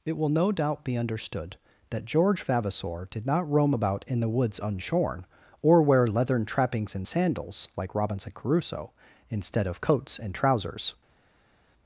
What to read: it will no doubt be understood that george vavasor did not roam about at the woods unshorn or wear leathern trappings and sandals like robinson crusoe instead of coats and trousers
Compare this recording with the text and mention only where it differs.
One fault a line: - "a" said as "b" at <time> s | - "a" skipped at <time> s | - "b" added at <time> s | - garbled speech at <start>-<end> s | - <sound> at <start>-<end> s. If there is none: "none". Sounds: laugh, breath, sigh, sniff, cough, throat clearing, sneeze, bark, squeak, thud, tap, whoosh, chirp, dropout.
- "at" said as "in" at 4.1 s